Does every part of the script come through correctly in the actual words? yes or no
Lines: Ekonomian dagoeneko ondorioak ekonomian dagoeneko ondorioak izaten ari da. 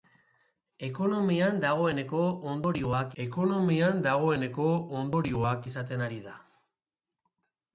yes